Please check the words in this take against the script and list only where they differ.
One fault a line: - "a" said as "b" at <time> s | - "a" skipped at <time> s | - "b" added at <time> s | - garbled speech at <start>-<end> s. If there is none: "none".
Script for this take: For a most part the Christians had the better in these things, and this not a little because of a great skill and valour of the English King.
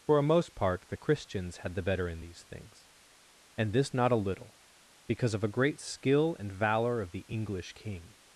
none